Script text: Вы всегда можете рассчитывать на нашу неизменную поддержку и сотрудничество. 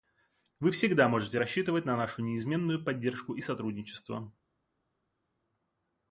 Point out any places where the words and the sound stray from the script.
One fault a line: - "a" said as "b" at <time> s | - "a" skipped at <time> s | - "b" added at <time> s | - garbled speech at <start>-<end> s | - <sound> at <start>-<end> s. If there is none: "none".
none